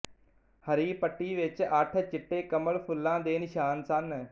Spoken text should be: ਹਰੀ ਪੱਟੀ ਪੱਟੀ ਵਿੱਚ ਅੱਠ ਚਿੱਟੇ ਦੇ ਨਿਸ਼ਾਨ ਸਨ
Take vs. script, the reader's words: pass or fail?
fail